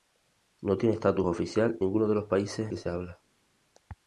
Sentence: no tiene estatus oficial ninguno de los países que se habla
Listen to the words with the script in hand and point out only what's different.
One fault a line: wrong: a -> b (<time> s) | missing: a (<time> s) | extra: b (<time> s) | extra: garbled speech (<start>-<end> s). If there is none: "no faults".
no faults